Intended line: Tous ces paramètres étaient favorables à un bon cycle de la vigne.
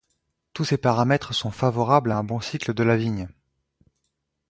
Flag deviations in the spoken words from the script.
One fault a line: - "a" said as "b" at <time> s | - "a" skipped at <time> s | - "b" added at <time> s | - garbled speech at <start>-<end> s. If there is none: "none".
- "étaient" said as "sont" at 1.3 s